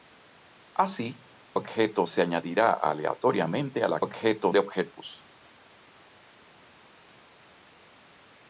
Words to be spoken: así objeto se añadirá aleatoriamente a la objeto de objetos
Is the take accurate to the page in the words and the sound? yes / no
yes